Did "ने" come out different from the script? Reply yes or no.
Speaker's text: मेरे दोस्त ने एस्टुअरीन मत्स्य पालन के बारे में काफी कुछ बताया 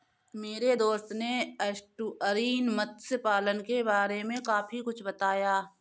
no